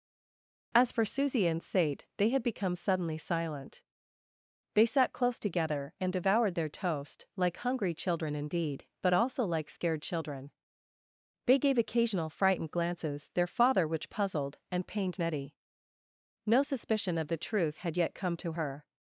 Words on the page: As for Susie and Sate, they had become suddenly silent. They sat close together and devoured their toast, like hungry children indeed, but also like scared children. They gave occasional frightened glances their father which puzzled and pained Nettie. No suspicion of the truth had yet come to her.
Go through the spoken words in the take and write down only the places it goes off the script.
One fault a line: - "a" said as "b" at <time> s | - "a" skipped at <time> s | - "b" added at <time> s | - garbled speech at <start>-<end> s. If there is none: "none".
none